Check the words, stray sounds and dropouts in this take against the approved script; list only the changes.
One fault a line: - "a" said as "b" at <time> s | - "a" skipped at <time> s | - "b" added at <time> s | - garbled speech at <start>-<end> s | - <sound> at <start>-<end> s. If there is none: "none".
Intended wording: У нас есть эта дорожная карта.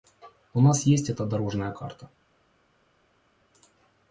none